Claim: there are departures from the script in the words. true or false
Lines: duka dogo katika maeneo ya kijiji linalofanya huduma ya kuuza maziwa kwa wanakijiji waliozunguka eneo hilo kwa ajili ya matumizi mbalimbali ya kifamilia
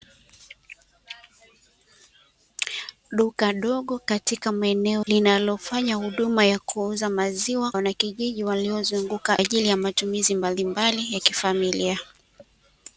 true